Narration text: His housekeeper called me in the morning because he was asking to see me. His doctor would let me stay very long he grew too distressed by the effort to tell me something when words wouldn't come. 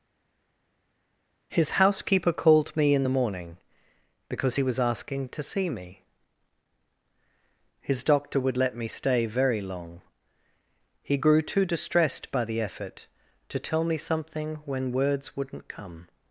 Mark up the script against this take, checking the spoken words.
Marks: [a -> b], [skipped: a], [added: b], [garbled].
His housekeeper called me in the morning because he was asking to see me. His doctor would let me stay very long he grew too distressed by the effort to tell me something when words wouldn't come.